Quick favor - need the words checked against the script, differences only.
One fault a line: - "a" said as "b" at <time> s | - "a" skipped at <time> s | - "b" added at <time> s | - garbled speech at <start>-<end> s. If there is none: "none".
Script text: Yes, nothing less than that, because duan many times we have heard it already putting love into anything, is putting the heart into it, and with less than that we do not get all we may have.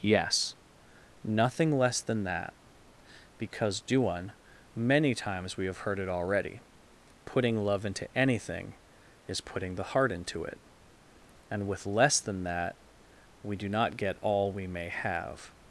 none